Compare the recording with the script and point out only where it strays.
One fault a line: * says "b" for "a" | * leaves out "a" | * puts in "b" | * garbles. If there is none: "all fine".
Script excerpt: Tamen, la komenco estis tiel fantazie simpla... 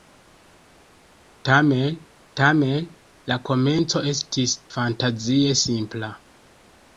* puts in "tamen"
* leaves out "tiel"